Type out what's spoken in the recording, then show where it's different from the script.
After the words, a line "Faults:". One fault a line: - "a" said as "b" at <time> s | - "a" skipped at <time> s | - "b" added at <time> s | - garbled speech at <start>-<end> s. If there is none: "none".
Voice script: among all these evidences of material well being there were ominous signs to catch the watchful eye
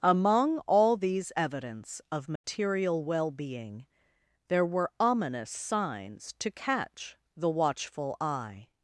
among all these evidence of material well being there were ominous signs to catch the watchful eye
Faults:
- "evidences" said as "evidence" at 1.4 s